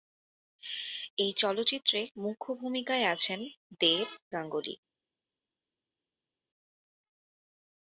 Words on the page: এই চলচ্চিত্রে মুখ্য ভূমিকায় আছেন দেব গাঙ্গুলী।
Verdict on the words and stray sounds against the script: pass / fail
pass